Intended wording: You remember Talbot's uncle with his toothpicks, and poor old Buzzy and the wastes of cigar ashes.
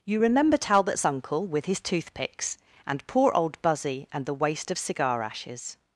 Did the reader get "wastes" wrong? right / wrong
wrong